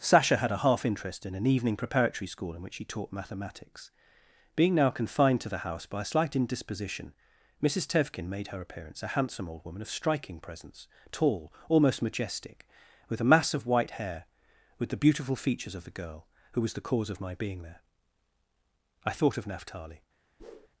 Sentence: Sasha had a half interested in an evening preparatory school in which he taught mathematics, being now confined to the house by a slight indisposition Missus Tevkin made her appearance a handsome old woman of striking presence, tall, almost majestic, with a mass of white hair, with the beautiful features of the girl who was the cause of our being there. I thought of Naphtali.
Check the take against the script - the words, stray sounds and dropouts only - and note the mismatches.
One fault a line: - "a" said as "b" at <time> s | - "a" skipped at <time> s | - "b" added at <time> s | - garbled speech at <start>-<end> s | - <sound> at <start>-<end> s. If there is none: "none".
- "interested" said as "interest" at 0.8 s
- "our" said as "my" at 17.2 s
- whoosh at 20.4-20.7 s